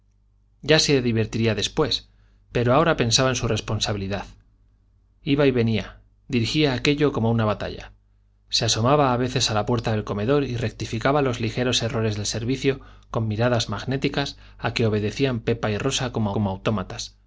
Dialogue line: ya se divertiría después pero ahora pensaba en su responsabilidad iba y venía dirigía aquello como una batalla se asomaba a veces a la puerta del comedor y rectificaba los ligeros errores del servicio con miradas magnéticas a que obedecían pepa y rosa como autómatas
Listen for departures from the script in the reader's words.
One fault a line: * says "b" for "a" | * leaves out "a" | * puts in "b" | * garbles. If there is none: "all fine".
* puts in "como"